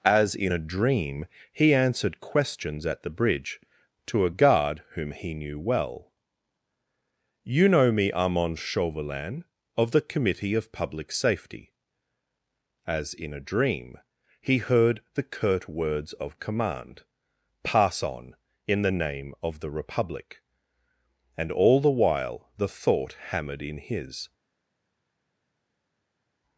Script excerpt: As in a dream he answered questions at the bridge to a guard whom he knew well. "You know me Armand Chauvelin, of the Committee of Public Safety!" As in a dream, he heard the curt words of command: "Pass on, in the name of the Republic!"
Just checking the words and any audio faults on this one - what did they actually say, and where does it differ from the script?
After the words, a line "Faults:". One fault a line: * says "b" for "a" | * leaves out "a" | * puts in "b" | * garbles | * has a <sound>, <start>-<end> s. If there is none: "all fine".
As in a dream he answered questions at the bridge to a guard whom he knew well. "You know me Armand Chauvelin, of the Committee of Public Safety!" As in a dream, he heard the curt words of command: "Pass on, in the name of the Republic!" And all the while the thought hammered in his
Faults:
* puts in "And all the while the thought hammered in his"